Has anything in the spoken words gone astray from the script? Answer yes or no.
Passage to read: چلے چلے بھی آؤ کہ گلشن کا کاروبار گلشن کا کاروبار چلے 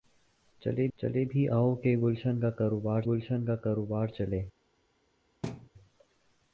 no